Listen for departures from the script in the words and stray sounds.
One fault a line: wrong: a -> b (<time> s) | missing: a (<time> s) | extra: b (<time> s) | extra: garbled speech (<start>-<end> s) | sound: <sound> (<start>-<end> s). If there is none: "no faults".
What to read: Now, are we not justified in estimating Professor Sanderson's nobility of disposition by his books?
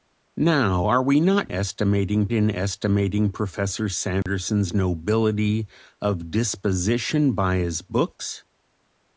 wrong: justified -> estimating (1.5 s)
sound: dropout (4.2-4.3 s)